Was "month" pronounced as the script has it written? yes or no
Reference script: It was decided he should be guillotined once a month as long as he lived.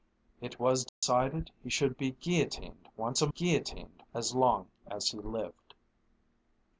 no